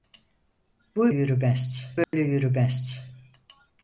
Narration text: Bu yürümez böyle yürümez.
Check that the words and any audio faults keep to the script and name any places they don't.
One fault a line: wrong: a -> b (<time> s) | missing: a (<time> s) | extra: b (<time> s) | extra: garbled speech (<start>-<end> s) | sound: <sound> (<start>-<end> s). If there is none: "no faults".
sound: dropout (2.0-2.1 s)